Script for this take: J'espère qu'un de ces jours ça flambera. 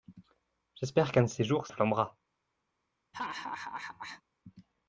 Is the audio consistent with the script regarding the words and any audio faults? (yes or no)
no